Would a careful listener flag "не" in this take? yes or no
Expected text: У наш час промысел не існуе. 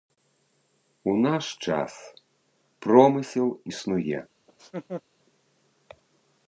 yes